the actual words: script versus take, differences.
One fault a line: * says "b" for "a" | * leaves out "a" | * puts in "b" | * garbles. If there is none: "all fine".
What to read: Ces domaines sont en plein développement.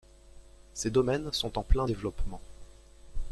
all fine